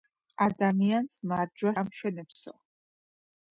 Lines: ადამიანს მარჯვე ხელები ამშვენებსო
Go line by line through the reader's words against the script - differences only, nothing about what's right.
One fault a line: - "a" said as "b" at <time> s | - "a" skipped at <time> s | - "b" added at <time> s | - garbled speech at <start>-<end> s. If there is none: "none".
- "ხელები" skipped at 1.8 s